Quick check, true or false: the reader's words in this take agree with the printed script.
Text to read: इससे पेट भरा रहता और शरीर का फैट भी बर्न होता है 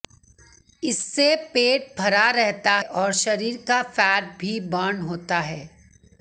true